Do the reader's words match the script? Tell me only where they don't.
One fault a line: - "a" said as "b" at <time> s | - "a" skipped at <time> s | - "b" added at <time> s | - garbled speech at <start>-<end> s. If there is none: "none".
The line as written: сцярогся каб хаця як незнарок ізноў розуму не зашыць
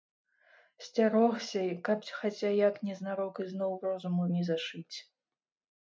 none